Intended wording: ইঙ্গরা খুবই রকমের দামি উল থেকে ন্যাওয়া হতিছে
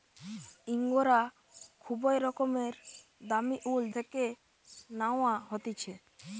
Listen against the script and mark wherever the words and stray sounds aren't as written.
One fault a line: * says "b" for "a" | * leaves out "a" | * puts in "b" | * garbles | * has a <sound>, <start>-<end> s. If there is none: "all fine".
all fine